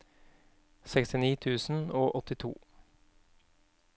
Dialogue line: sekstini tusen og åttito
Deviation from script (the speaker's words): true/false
false